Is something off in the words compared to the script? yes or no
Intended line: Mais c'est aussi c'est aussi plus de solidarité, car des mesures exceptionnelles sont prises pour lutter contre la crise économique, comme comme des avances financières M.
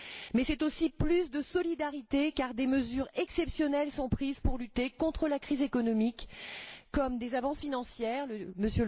yes